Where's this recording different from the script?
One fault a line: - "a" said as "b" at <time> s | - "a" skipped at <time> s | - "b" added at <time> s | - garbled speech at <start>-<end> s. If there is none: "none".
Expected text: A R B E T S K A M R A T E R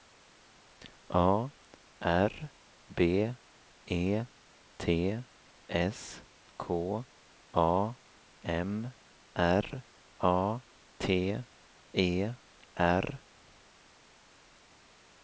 none